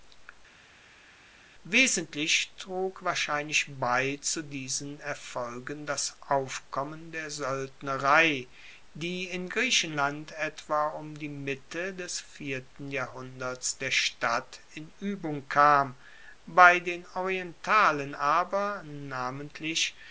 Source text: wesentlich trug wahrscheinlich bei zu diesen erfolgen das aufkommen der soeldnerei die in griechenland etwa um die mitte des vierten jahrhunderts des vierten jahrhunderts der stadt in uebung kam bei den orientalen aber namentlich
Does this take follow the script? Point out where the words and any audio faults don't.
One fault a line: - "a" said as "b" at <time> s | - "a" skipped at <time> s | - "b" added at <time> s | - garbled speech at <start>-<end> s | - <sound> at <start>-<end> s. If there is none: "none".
- "des vierten jahrhunderts" skipped at 13.8 s